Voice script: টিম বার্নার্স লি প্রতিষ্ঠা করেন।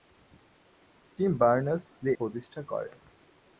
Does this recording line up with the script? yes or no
yes